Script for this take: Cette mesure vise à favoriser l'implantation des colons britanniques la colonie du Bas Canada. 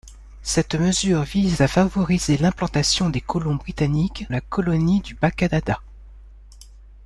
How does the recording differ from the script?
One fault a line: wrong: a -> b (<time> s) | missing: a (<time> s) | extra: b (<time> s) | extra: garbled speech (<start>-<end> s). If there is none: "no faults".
no faults